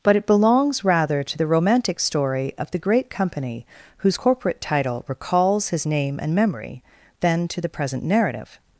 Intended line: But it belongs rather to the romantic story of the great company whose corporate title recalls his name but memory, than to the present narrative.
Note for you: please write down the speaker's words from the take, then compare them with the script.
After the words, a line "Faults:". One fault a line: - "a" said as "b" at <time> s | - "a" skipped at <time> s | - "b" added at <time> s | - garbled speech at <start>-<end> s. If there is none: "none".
But it belongs rather to the romantic story of the great company whose corporate title recalls his name and memory, than to the present narrative.
Faults:
- "but" said as "and" at 6.2 s